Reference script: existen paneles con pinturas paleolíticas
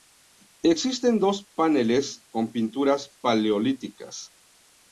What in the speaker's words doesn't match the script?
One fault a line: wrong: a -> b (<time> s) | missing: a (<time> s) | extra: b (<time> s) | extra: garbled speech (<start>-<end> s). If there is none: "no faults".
extra: dos (1.2 s)